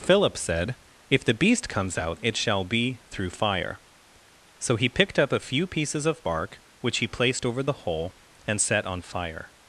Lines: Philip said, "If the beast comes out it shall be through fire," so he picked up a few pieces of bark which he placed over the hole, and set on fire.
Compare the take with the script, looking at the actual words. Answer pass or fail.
pass